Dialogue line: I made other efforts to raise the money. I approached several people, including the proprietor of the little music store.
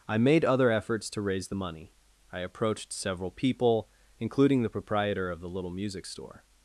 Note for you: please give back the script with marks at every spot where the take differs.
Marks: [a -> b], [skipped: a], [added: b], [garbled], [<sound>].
I made other efforts to raise the money. I approached several people, including the proprietor of the little music store.